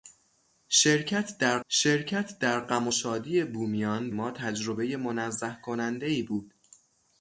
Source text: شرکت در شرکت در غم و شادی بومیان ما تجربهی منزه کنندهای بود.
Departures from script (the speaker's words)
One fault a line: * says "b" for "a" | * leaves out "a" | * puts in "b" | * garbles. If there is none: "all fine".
all fine